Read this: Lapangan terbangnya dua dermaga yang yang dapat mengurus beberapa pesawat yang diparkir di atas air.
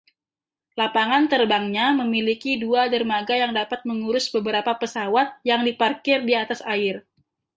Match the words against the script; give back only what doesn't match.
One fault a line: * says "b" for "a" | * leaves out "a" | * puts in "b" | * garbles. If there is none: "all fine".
* puts in "memiliki"
* leaves out "yang"